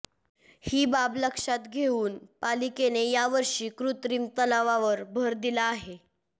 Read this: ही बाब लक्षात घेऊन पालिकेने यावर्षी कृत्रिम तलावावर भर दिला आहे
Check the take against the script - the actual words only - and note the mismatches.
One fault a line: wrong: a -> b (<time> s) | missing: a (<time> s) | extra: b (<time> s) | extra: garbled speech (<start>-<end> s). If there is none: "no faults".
no faults